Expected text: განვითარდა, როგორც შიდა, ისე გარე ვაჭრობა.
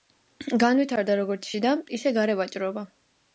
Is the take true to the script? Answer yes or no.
yes